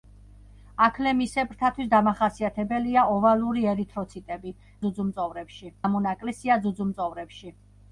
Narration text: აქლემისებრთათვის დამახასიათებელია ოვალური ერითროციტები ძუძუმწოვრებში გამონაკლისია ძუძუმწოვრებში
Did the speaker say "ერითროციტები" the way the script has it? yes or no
yes